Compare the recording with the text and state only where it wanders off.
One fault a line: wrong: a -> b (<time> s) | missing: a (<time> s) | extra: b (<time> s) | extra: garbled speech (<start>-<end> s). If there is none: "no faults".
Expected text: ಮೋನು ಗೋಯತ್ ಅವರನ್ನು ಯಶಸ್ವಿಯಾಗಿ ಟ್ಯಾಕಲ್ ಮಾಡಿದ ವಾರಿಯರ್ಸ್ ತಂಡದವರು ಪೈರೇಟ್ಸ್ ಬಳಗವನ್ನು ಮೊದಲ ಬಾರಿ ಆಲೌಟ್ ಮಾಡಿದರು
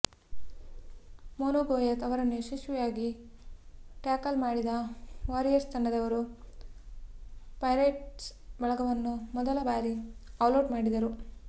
no faults